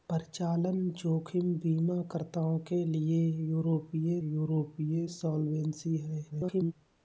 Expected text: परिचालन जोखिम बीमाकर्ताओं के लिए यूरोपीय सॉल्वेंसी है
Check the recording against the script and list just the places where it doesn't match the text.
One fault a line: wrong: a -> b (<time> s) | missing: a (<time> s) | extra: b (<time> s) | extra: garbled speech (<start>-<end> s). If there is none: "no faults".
extra: यूरोपीय (4.2 s)
extra: garbled speech (6.3-6.7 s)